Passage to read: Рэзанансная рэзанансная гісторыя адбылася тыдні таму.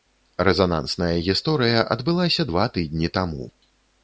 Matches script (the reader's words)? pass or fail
fail